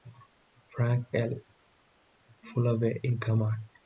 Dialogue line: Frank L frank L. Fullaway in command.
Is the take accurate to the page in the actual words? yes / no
no